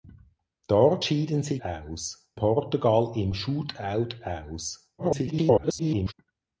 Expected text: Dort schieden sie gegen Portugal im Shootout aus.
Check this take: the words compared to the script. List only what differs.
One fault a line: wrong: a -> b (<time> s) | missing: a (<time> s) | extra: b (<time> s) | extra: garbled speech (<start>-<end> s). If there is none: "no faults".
wrong: gegen -> aus (1.6 s)
extra: garbled speech (5.0-6.1 s)